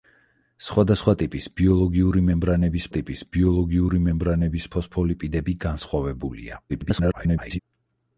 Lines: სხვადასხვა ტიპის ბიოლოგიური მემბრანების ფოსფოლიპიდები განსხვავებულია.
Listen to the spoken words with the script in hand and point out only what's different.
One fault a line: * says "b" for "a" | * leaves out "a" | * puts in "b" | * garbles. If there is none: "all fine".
* puts in "ტიპის ბიოლოგიური მემბრანების"
* garbles